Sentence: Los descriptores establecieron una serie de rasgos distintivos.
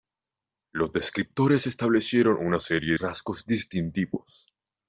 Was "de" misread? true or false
true